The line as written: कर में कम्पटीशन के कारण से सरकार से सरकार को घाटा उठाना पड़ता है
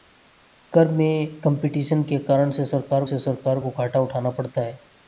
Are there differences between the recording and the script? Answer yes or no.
no